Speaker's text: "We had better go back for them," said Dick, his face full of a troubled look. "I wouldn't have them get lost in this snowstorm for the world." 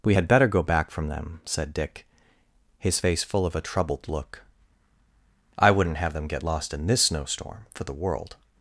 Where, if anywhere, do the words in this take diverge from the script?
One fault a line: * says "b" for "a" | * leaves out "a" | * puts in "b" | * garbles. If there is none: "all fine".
* says "from" for "for"